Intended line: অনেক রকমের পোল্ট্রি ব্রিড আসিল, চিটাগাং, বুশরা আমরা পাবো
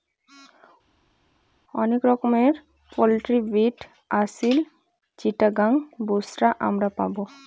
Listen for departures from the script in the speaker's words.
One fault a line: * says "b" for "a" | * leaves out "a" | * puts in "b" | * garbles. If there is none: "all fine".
all fine